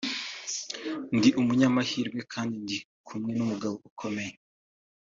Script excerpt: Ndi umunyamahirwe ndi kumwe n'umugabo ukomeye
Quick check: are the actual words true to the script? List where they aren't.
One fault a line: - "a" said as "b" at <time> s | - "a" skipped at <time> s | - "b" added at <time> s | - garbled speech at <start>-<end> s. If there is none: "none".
- "kandi" added at 2.3 s